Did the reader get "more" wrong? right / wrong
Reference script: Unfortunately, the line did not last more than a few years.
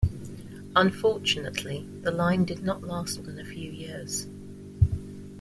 wrong